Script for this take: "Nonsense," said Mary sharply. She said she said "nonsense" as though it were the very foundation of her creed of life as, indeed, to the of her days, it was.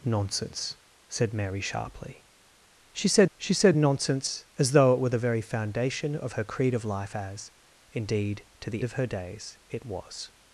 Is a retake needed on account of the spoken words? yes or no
no